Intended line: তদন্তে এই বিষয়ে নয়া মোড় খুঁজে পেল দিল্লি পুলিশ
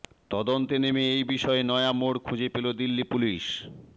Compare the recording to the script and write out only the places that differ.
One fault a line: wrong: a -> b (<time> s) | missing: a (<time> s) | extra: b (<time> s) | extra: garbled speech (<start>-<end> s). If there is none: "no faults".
extra: নেমে (0.8 s)